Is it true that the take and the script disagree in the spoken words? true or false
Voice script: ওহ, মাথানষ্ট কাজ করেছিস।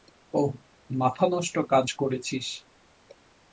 false